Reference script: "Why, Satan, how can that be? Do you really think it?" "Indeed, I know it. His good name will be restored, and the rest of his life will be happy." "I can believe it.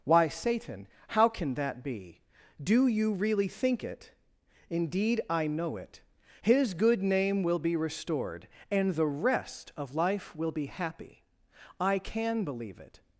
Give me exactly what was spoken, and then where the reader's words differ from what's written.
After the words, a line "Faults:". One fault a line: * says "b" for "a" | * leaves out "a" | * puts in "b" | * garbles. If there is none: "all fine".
"Why, Satan, how can that be? Do you really think it?" "Indeed, I know it. His good name will be restored, and the rest of life will be happy." "I can believe it.
Faults:
* leaves out "his"